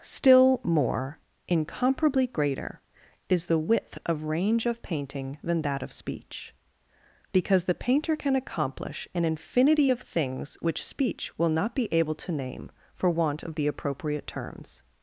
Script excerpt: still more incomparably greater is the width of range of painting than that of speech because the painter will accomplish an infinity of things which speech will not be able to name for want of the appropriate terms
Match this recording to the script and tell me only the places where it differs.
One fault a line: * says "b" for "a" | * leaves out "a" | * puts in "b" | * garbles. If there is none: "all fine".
* says "can" for "will"